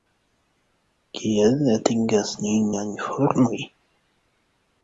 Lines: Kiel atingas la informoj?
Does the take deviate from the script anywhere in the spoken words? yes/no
yes